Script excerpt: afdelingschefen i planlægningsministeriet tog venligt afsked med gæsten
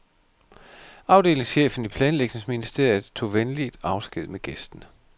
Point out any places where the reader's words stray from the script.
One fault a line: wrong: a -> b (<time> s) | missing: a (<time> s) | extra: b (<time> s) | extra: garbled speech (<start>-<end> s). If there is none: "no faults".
no faults